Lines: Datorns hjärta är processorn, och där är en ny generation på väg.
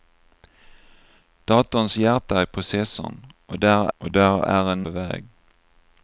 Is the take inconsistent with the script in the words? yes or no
yes